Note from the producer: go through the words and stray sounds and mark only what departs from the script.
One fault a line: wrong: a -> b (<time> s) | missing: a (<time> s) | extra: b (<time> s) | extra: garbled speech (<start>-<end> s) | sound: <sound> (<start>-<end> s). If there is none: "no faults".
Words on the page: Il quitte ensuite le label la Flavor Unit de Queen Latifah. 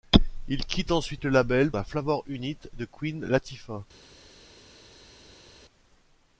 no faults